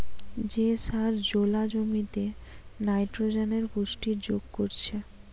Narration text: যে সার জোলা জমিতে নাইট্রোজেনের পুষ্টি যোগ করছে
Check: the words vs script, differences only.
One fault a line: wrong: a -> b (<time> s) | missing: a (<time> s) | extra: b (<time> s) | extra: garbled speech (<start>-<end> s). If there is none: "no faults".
no faults